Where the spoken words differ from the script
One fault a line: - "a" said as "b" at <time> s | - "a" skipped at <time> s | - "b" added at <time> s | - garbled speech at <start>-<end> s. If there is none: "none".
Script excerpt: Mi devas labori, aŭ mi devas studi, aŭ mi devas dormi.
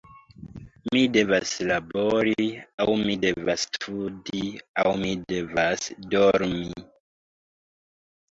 none